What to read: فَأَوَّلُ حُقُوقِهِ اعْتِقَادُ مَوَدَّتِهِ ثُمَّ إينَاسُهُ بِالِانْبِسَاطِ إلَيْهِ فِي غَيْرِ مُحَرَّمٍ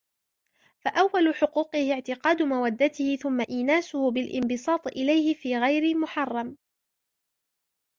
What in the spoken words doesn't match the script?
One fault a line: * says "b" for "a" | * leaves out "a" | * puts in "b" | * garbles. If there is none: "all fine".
all fine